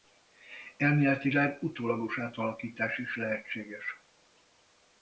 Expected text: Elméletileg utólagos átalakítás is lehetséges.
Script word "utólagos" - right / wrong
right